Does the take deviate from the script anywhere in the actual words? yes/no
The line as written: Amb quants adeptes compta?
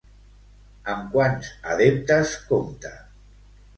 no